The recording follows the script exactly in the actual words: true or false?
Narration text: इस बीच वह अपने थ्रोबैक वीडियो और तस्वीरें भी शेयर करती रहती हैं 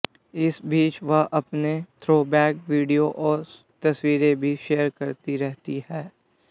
true